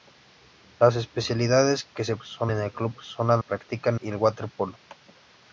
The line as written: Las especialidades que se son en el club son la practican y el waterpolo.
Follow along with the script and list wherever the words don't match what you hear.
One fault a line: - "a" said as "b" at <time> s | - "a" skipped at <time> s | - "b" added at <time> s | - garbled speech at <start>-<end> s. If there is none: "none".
none